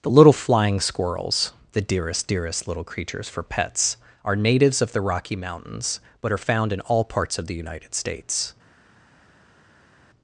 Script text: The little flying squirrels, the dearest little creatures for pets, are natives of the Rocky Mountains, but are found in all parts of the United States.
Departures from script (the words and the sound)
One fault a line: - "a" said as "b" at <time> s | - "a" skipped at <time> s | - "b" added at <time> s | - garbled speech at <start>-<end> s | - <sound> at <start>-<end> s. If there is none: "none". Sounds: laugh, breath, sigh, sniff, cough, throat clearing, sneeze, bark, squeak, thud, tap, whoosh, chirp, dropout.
- "dearest" added at 2.3 s